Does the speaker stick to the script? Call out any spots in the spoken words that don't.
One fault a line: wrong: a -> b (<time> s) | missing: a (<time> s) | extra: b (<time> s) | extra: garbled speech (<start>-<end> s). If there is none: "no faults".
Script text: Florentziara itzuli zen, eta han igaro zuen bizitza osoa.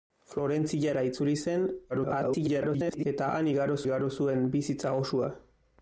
extra: garbled speech (1.9-3.1 s)
extra: igaro (3.8 s)